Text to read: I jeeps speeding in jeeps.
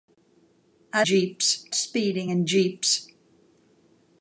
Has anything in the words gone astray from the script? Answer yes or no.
no